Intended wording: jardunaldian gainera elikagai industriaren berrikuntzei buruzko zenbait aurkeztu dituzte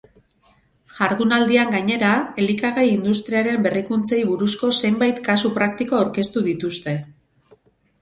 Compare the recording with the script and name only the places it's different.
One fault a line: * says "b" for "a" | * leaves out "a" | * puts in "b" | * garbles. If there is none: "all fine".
* puts in "kasu praktiko"